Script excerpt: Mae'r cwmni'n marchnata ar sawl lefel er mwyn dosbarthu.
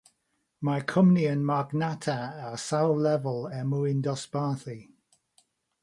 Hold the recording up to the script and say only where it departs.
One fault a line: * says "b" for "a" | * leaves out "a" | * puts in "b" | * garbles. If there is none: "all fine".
all fine